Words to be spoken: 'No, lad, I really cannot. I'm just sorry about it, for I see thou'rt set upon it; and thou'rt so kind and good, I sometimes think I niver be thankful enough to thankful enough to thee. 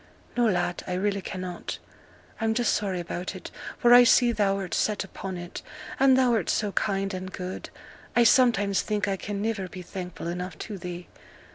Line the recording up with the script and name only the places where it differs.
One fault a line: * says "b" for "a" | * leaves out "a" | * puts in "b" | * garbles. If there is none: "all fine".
* puts in "can"
* leaves out "thankful enough to"